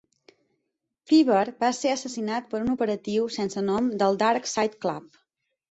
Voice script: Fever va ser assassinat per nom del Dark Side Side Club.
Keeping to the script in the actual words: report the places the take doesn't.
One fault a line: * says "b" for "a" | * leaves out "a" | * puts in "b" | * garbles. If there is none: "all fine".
* puts in "un operatiu sense"
* leaves out "Side"